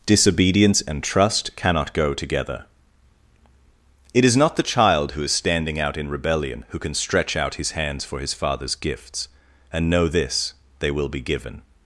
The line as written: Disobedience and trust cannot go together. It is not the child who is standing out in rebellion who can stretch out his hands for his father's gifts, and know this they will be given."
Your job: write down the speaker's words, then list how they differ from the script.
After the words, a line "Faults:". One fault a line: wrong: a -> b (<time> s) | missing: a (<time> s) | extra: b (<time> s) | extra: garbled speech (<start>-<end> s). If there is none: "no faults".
Disobedience and trust cannot go together. It is not the child who is standing out in rebellion who can stretch out his hands for his father's gifts, and know this they will be given."
Faults:
no faults